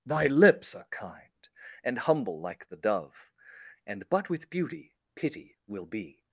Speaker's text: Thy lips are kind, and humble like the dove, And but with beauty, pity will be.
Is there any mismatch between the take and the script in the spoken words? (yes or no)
no